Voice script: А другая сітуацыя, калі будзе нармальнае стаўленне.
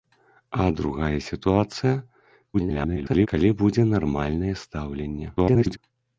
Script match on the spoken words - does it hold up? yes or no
no